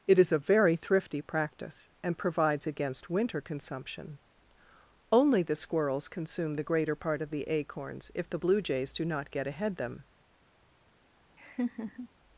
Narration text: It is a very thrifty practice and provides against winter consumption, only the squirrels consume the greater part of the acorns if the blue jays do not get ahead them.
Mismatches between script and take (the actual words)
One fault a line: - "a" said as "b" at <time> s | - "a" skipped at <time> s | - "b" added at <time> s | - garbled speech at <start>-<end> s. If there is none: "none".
none